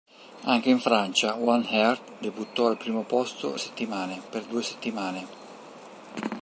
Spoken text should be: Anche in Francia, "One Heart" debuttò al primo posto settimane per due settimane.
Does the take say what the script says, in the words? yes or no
yes